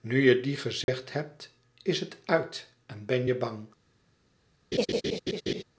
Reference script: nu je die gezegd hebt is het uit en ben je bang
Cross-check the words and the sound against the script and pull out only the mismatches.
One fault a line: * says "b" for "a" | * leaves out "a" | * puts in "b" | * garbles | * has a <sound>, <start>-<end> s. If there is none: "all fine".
* has a dropout, 0.8-0.9 s
* has a laugh, 4.7-5.6 s